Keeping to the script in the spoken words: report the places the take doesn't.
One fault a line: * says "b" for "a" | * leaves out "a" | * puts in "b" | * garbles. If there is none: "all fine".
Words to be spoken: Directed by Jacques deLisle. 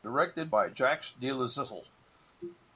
all fine